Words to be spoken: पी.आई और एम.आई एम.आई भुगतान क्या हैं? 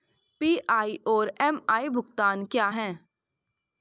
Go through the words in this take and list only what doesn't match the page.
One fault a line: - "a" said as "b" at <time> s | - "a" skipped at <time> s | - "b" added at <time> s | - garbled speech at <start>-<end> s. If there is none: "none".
- "एम.आई" skipped at 1.9 s